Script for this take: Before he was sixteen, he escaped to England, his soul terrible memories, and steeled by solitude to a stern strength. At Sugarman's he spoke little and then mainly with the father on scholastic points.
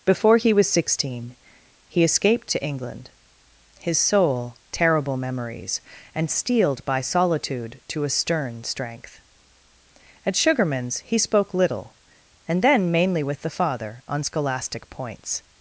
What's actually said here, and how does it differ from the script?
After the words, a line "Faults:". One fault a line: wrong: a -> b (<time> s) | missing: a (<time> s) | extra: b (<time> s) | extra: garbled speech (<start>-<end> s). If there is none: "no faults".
Before he was sixteen, he escaped to England, his soul terrible memories, and steeled by solitude to a stern strength. At Sugarman's he spoke little and then mainly with the father on scholastic points.
Faults:
no faults